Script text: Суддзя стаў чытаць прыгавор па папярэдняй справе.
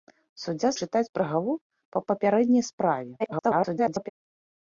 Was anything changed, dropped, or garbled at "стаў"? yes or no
yes